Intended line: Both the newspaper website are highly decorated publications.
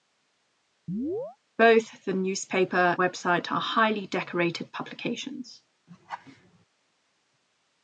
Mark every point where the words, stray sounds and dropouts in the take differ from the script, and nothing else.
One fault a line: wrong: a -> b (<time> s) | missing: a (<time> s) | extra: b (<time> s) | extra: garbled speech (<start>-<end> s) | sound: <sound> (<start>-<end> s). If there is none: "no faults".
sound: chirp (0.9-1.4 s)
sound: laugh (5.9-6.7 s)